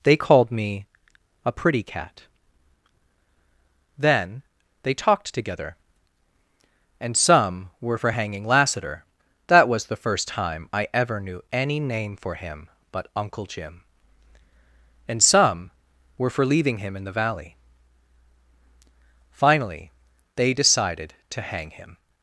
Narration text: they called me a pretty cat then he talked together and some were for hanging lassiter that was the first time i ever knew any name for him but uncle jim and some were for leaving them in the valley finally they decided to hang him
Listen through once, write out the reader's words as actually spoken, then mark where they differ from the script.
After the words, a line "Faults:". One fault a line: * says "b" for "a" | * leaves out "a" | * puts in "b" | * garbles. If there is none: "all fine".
they called me a pretty cat then they talked together and some were for hanging lassiter that was the first time i ever knew any name for him but uncle jim and some were for leaving him in the valley finally they decided to hang him
Faults:
* says "they" for "he"
* says "him" for "them"